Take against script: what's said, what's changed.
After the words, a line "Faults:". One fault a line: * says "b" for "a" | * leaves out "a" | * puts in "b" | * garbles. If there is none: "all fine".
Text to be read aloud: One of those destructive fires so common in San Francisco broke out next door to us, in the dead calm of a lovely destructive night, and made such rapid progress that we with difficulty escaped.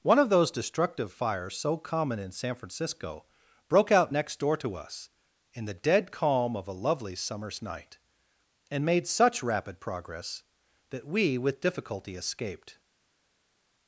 One of those destructive fires so common in San Francisco broke out next door to us, in the dead calm of a lovely summer's night, and made such rapid progress that we with difficulty escaped.
Faults:
* says "summer's" for "destructive"